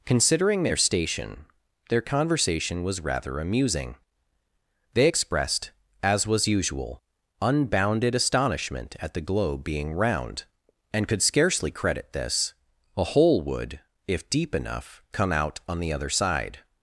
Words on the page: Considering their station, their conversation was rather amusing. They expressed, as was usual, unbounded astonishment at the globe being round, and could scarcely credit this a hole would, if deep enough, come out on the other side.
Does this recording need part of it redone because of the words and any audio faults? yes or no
no